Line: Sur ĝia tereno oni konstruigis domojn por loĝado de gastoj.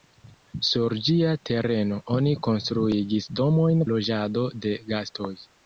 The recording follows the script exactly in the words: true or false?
false